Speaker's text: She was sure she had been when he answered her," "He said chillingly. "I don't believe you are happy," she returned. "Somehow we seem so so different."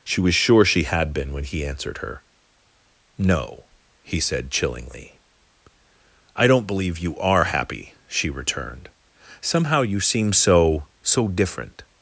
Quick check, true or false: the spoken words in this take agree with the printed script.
false